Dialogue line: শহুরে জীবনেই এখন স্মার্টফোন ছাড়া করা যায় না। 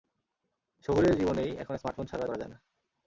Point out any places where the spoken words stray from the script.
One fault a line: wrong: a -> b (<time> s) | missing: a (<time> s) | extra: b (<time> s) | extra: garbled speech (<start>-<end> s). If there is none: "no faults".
no faults